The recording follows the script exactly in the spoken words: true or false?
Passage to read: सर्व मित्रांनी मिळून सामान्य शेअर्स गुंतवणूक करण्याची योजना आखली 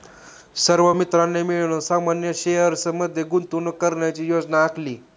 false